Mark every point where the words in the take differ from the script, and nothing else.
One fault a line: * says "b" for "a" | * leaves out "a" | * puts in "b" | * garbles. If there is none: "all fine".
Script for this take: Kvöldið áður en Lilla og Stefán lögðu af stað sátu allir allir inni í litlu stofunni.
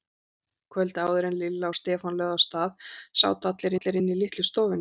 all fine